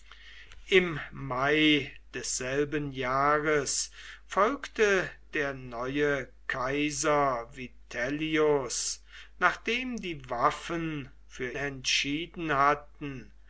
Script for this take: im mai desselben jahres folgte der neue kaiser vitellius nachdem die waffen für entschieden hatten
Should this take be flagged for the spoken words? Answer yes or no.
no